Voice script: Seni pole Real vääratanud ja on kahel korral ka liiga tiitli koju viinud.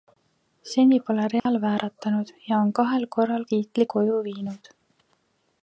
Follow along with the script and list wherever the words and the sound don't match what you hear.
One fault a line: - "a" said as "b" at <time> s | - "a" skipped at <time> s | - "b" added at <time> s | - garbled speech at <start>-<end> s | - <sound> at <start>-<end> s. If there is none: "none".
- dropout at 1.4-1.5 s
- "ka liiga" skipped at 3.5 s